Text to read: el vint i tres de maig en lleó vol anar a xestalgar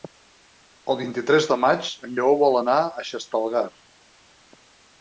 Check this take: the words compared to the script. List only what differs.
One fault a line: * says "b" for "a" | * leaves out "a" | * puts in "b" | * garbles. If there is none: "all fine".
all fine